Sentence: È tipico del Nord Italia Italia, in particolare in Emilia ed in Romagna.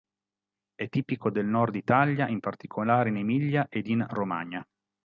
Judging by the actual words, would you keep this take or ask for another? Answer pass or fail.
fail